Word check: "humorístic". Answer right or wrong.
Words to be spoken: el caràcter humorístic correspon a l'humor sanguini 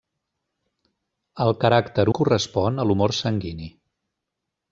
wrong